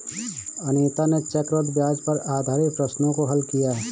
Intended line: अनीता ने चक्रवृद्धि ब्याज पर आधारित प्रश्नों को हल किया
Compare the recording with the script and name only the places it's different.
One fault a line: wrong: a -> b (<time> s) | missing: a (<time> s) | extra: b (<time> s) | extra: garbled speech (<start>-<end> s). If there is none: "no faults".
no faults